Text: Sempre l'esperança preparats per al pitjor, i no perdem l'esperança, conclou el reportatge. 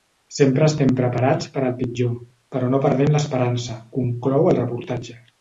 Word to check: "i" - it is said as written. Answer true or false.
false